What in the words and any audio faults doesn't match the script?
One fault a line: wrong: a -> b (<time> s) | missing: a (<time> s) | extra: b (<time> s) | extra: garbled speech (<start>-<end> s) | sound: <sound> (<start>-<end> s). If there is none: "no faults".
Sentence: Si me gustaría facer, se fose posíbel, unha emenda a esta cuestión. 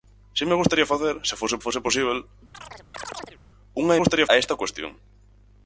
extra: fose (1.6 s)
sound: chirp (2.5-3.4 s)
wrong: emenda -> gustaría (4.0 s)